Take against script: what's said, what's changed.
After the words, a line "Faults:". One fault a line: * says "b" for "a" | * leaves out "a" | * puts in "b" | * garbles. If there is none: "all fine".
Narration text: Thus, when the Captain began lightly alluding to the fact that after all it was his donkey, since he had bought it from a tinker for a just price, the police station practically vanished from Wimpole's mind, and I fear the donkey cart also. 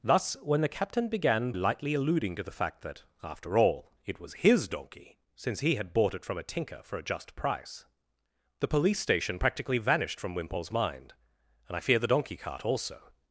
Thus, when the Captain began lightly alluding to the fact that after all it was his donkey, since he had bought it from a tinker for a just price, the police station practically vanished from Wimpole's mind, and I fear the donkey cart also.
Faults:
all fine